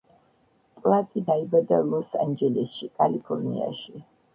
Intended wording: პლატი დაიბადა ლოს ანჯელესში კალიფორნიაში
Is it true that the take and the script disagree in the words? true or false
false